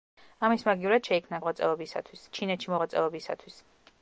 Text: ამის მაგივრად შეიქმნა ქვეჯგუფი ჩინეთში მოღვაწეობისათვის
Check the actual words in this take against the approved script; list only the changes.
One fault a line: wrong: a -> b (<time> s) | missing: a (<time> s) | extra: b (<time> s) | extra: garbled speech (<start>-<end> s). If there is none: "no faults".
wrong: ქვეჯგუფი -> მოღვაწეობისათვის (1.4 s)